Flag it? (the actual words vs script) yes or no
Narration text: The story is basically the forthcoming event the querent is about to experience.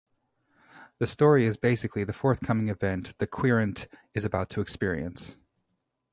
no